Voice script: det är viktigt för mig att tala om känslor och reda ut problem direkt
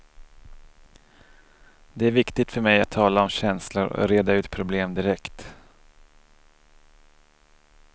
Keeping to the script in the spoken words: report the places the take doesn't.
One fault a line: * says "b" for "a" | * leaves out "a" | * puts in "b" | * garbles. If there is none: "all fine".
all fine